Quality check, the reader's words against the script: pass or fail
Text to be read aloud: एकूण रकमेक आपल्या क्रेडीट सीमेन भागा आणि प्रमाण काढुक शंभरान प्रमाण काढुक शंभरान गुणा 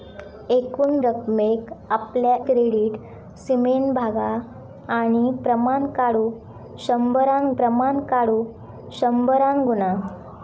pass